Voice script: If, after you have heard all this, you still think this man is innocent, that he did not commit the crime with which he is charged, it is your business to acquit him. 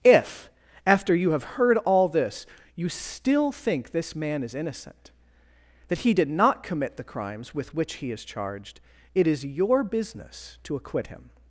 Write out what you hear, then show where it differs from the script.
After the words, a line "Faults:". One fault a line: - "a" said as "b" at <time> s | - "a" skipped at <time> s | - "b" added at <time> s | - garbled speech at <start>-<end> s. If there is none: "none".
If, after you have heard all this, you still think this man is innocent, that he did not commit the crimes with which he is charged, it is your business to acquit him.
Faults:
- "crime" said as "crimes" at 7.0 s